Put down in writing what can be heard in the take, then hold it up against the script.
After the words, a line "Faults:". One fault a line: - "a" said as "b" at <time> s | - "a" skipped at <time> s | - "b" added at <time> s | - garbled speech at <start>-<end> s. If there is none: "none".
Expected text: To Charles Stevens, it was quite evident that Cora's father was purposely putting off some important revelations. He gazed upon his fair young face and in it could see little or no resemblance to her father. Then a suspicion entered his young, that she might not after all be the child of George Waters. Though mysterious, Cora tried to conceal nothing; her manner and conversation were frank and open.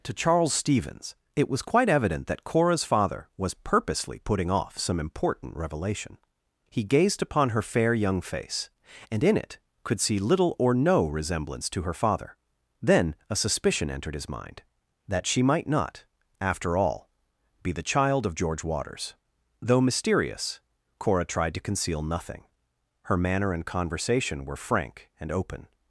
To Charles Stevens, it was quite evident that Cora's father was purposely putting off some important revelation. He gazed upon her fair young face and in it could see little or no resemblance to her father. Then a suspicion entered his mind, that she might not after all be the child of George Waters. Though mysterious, Cora tried to conceal nothing; her manner and conversation were frank and open.
Faults:
- "revelations" said as "revelation" at 5.5 s
- "his" said as "her" at 7.5 s
- "young" said as "mind" at 14.3 s